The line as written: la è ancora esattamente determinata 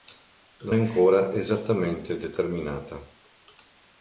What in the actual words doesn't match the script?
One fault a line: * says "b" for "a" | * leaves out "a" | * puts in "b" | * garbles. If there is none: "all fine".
all fine